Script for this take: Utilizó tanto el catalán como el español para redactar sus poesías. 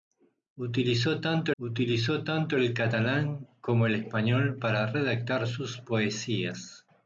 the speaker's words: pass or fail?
fail